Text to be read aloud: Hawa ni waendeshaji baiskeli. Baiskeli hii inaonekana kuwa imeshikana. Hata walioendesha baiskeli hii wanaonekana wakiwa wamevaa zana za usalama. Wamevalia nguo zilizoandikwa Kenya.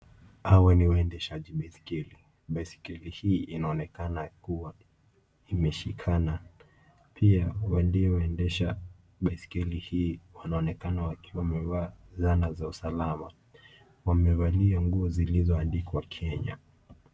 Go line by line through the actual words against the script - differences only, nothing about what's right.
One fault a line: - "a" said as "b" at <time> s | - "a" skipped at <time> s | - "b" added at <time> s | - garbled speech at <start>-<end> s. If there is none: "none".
- "Hata" said as "Pia" at 7.1 s